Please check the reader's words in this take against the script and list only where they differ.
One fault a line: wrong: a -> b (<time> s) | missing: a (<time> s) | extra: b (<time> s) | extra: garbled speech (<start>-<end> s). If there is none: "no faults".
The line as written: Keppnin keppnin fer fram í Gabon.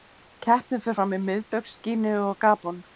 missing: keppnin (0.8 s)
extra: Miðbaugs Gíneu og (1.3 s)